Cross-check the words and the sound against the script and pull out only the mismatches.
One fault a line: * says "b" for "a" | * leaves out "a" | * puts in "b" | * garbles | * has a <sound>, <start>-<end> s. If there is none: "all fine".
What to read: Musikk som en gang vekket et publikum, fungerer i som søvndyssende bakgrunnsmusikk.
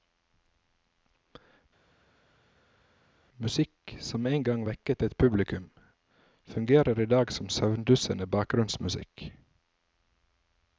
* puts in "dag"